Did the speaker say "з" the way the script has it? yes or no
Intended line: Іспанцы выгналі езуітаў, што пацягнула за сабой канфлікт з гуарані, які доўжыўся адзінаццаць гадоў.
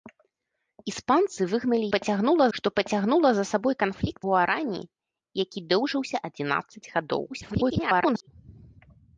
no